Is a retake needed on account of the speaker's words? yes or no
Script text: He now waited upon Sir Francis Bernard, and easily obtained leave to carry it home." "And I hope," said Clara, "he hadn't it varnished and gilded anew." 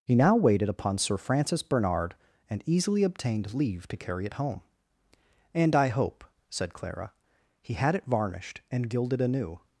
yes